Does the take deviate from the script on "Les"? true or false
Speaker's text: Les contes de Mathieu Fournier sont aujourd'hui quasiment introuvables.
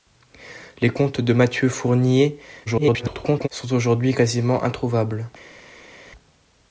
false